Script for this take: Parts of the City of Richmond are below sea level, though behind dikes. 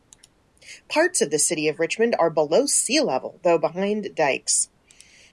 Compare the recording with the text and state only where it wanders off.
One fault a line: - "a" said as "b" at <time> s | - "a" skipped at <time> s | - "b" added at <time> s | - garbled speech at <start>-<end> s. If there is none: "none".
none